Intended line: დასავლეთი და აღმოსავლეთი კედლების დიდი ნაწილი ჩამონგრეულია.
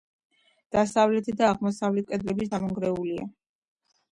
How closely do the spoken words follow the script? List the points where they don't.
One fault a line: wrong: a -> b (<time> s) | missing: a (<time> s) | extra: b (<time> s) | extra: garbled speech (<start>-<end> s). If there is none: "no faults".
missing: დიდი ნაწილი (2.5 s)